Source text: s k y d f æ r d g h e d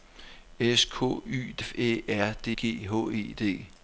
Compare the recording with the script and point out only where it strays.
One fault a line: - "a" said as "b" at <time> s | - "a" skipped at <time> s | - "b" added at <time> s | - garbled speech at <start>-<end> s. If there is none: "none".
none